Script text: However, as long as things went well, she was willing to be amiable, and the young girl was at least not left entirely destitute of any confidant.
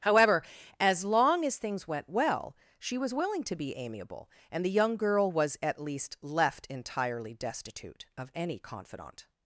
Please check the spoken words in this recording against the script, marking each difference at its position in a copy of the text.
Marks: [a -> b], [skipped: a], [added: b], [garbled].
However, as long as things went well, she was willing to be amiable, and the young girl was at least [skipped: not] left entirely destitute of any confidant.